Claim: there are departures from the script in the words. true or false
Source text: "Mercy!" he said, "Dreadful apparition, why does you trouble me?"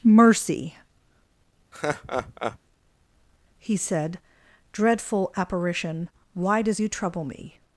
false